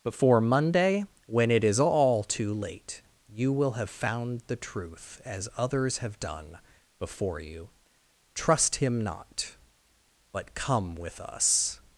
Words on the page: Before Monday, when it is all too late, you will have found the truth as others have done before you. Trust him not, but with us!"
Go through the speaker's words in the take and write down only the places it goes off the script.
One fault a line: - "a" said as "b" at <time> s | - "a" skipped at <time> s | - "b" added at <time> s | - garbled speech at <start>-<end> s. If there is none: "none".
- "come" added at 10.5 s